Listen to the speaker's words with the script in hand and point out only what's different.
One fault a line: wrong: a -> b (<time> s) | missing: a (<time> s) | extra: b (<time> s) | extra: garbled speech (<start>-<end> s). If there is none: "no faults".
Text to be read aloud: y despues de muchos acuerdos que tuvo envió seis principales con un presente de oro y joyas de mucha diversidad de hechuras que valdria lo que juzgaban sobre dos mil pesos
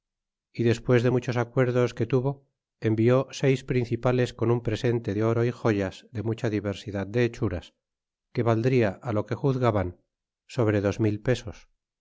no faults